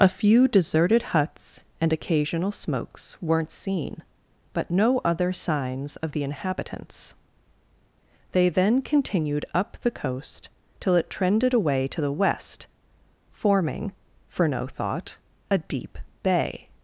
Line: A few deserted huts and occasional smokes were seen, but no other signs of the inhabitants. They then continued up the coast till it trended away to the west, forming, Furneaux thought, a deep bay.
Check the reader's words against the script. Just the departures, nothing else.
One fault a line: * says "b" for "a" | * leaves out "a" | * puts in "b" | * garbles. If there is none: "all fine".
* says "weren't" for "were"